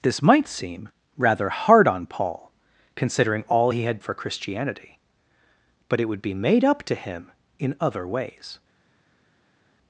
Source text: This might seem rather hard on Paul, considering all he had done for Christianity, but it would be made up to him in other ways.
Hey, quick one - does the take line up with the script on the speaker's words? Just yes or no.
no